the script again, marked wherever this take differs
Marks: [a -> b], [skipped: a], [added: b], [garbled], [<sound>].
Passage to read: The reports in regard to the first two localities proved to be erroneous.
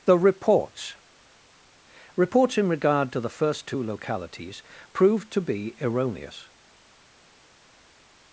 The reports [added: reports] in regard to the first two localities proved to be erroneous.